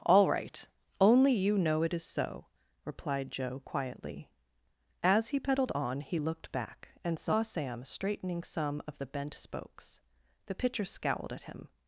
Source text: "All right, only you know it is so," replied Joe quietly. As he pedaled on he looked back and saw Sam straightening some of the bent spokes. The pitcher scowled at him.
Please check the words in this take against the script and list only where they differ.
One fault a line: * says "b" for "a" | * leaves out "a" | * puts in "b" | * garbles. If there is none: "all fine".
all fine